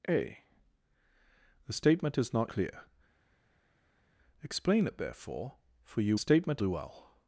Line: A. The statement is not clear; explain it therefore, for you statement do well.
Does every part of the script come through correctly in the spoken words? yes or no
yes